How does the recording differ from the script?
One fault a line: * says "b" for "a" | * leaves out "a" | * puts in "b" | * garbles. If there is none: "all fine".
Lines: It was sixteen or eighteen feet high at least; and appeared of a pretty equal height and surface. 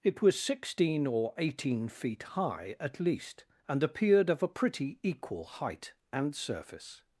all fine